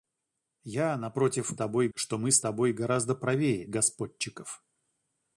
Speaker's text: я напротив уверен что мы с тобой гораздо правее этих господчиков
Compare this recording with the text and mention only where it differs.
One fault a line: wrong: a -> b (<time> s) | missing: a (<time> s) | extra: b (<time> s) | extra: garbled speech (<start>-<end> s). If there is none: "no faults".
wrong: уверен -> тобой (1.5 s)
missing: этих (3.7 s)